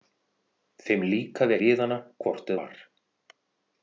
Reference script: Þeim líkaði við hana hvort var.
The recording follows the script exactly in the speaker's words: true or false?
true